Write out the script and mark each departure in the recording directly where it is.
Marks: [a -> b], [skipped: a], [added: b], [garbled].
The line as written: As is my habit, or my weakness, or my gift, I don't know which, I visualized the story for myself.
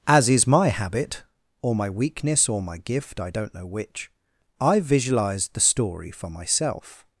As is my habit, or my weakness, or my gift, I don't know which, I visualized the story for myself.